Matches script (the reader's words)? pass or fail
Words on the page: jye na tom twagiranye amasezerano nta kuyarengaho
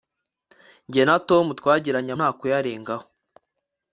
fail